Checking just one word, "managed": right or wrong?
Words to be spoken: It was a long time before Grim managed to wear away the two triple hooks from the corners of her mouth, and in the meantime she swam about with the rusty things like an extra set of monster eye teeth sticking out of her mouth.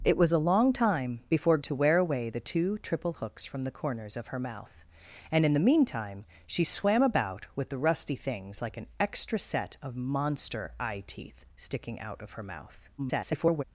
wrong